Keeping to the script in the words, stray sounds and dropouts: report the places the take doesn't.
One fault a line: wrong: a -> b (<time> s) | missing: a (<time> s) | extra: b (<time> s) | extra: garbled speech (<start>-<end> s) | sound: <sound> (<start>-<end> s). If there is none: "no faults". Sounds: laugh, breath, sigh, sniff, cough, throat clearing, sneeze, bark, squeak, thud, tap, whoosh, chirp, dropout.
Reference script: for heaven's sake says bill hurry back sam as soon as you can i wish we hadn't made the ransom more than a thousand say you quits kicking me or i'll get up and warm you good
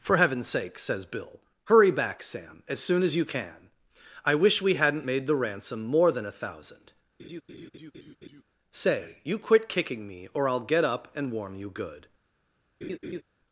sound: laugh (7.2-8.4 s)
wrong: quits -> quit (9.4 s)
sound: laugh (12.8-13.2 s)